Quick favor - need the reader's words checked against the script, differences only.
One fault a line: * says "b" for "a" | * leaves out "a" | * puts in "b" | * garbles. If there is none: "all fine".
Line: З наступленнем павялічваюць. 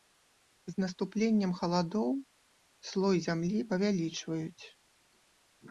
* puts in "халадоў слой зямлі"